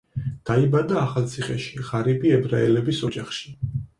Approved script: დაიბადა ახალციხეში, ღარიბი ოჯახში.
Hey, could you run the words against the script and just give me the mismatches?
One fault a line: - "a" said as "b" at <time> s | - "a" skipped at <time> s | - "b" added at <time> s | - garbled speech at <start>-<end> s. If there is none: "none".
- "ებრაელების" added at 2.4 s